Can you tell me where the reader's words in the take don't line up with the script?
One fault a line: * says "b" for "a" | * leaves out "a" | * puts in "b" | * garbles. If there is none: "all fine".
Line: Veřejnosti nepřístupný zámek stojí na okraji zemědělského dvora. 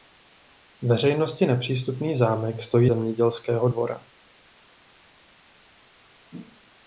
* leaves out "na okraji"